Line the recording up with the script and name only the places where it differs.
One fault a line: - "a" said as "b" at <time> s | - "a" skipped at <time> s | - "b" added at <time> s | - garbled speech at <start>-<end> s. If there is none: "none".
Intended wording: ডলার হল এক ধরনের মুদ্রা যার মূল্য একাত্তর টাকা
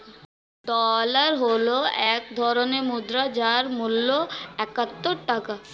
none